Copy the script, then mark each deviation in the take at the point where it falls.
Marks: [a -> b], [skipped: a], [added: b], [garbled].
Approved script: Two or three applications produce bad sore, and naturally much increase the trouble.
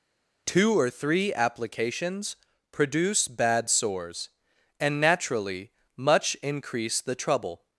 Two or three applications produce bad [sore, -> sores] and naturally much increase the trouble.